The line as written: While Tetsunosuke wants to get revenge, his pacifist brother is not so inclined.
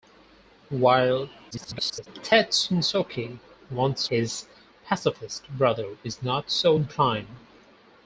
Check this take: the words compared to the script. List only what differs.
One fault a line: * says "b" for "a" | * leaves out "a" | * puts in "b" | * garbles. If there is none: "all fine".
* garbles
* leaves out "to get revenge"